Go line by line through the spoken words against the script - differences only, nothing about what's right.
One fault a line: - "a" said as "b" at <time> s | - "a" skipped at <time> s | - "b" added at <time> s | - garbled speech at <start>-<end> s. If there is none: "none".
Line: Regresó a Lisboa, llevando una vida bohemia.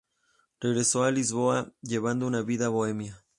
none